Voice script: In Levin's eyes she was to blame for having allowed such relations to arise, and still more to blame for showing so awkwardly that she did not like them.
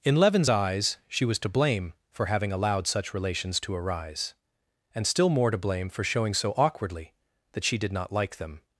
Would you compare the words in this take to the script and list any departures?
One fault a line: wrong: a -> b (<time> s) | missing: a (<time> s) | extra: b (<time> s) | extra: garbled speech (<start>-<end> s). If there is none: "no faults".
no faults